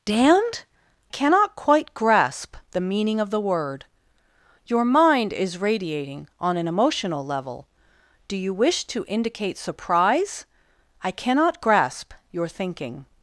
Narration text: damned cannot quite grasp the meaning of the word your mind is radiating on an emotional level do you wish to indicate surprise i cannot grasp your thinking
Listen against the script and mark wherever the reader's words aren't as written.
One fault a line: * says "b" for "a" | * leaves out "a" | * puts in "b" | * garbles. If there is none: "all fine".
all fine